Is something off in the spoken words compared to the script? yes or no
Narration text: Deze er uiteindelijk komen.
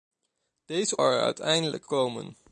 no